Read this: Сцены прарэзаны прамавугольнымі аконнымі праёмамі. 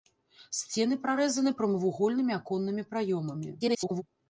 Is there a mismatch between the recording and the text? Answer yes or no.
yes